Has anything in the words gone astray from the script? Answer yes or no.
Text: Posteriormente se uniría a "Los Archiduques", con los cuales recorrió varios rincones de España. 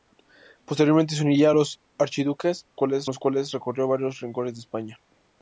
yes